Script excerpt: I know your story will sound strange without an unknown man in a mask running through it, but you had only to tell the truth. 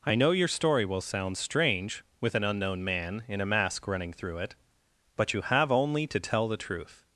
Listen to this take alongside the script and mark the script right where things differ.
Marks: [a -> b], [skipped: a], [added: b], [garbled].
I know your story will sound strange [without -> with] an unknown man in a mask running through it, but you [had -> have] only to tell the truth.